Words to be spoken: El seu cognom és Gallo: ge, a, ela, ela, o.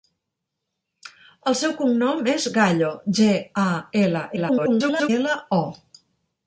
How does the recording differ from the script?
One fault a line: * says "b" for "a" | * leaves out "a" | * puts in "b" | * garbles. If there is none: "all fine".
* garbles